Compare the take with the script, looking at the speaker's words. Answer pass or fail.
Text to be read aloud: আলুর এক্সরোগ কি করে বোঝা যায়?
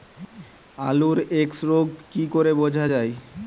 pass